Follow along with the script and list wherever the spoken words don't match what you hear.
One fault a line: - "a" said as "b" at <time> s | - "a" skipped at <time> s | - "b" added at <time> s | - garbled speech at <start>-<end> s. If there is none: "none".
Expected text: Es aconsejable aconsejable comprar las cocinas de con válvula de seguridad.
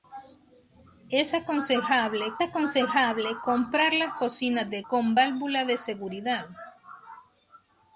none